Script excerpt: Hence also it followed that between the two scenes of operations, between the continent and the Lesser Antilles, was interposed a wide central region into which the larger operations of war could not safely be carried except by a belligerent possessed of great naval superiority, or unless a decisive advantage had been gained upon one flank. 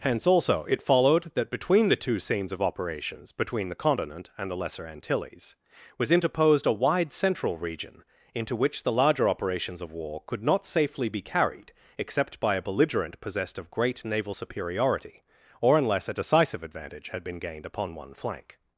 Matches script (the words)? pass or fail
pass